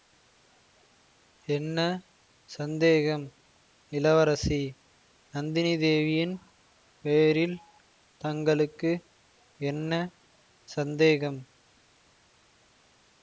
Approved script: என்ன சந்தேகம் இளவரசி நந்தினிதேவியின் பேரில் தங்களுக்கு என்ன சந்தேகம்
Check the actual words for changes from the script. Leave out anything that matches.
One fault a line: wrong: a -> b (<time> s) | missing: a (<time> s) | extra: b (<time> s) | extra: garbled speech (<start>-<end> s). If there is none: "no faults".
no faults